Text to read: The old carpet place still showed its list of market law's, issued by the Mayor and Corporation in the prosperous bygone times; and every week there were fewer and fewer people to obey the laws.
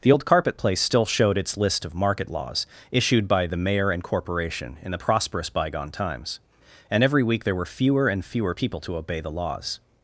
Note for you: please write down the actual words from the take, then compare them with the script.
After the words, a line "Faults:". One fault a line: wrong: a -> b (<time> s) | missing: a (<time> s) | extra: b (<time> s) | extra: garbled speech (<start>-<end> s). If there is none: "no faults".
The old carpet place still showed its list of market law's, issued by the Mayor and Corporation in the prosperous bygone times; and every week there were fewer and fewer people to obey the laws.
Faults:
no faults